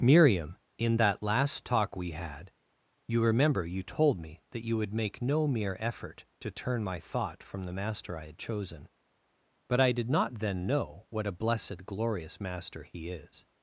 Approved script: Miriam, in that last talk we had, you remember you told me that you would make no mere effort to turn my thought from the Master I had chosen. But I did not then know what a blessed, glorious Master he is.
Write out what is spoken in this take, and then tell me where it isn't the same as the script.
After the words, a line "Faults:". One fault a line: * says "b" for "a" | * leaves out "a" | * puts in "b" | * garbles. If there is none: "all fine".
Miriam, in that last talk we had, you remember you told me that you would make no mere effort to turn my thought from the Master I had chosen. But I did not then know what a blessed, glorious Master he is.
Faults:
all fine